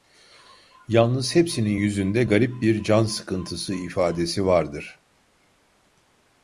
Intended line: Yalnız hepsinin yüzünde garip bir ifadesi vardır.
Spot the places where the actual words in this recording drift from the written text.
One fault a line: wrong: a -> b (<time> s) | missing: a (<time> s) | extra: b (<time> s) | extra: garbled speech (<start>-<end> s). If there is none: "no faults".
extra: can sıkıntısı (2.8 s)